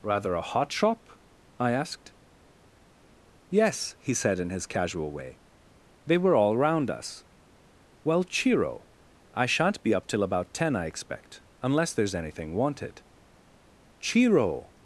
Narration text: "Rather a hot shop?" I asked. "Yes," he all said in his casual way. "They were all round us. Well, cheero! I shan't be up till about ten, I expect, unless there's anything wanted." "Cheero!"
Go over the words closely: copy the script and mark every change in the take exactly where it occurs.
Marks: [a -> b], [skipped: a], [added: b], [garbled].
"Rather a hot shop?" I asked. "Yes," he [skipped: all] said in his casual way. "They were all round us. Well, cheero! I shan't be up till about ten, I expect, unless there's anything wanted." "Cheero!"